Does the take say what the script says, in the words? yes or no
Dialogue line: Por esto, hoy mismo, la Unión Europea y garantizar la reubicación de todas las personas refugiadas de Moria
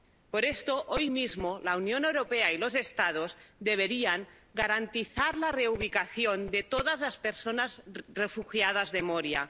no